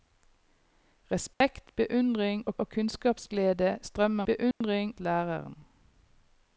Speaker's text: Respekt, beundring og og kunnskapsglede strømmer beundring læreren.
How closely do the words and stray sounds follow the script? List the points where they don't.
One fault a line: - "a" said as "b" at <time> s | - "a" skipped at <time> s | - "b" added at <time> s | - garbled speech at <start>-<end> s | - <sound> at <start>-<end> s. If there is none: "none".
- dropout at 1.3-1.4 s
- dropout at 4.5-4.6 s